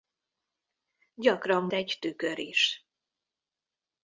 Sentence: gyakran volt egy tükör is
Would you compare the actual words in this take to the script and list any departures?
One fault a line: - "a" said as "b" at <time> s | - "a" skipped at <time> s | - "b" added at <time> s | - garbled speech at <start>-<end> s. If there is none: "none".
- "volt" skipped at 1.7 s